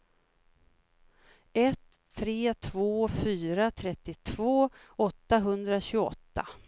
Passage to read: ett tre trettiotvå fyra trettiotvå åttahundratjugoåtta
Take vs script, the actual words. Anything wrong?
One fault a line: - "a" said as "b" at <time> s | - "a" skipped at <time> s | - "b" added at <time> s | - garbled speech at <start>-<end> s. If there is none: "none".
- "trettiotvå" said as "två" at 2.5 s